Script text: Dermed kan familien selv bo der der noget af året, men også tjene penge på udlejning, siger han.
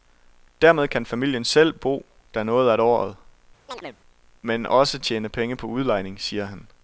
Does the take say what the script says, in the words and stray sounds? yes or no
no